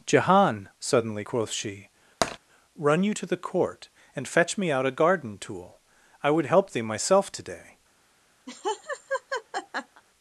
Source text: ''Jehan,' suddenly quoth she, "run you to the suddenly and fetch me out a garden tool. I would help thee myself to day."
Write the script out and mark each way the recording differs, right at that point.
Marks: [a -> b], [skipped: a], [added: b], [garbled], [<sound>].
''Jehan,' suddenly quoth she, [tap] "run you to the [suddenly -> court] and fetch me out a garden tool. I would help thee myself to day." [laugh]